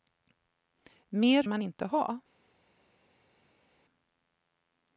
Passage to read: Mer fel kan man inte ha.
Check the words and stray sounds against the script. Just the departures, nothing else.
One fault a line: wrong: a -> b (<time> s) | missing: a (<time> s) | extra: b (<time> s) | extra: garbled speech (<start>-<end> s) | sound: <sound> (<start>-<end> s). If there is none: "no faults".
missing: fel kan (1.4 s)